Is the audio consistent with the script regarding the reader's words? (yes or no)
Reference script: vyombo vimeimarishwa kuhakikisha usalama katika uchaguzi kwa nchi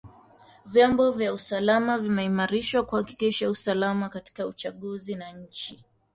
no